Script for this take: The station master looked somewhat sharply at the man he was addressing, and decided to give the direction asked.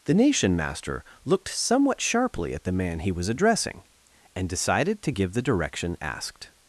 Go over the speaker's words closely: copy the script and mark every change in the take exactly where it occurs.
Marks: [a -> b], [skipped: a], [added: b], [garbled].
The [station -> nation] master looked somewhat sharply at the man he was addressing, and decided to give the direction asked.